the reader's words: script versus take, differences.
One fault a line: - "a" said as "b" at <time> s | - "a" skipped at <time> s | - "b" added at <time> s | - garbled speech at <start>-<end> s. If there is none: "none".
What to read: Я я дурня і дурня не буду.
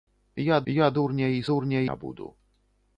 none